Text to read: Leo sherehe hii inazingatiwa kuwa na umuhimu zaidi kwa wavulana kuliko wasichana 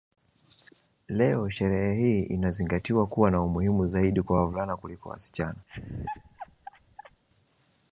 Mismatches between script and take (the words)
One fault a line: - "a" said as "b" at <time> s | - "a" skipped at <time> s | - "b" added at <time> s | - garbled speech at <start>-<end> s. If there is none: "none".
none